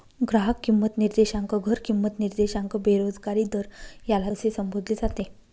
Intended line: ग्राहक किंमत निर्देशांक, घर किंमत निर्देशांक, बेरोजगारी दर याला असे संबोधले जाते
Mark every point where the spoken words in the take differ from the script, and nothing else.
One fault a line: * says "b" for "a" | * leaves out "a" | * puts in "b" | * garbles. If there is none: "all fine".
all fine